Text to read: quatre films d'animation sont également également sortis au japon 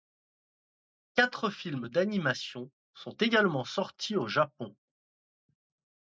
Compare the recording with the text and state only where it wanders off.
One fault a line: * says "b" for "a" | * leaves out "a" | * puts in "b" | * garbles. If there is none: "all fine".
* leaves out "également"